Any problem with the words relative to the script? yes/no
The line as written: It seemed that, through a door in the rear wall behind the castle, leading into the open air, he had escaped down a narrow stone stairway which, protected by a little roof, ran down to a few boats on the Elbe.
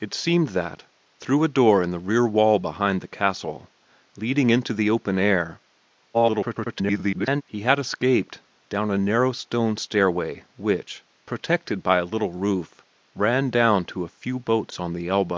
yes